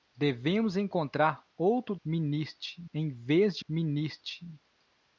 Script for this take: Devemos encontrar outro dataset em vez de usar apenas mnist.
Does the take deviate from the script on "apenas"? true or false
true